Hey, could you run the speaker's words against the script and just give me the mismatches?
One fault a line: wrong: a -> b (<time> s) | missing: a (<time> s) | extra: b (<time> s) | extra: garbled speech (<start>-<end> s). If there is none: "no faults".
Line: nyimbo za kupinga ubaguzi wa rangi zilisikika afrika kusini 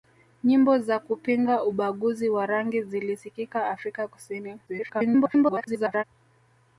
extra: garbled speech (4.7-6.0 s)